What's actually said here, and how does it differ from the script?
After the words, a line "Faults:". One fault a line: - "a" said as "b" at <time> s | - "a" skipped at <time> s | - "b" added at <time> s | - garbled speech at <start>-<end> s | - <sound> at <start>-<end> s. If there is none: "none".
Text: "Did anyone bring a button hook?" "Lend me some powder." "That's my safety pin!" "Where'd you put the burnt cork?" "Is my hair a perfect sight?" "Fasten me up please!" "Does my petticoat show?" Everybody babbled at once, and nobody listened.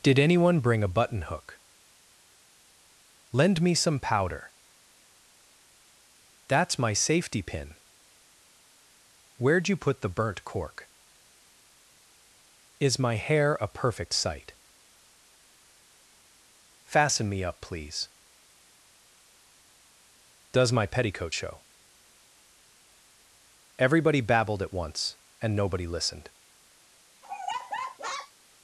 "Did anyone bring a button hook?" "Lend me some powder." "That's my safety pin!" "Where'd you put the burnt cork?" "Is my hair a perfect sight?" "Fasten me up please!" "Does my petticoat show?" Everybody babbled at once, and nobody listened.
Faults:
- laugh at 27.2-28.3 s